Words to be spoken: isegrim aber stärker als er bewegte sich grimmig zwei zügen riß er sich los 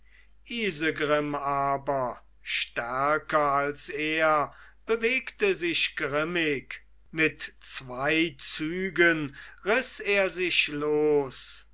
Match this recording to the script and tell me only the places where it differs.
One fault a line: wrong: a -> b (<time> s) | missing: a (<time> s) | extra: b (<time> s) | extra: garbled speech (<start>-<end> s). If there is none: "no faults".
extra: mit (7.1 s)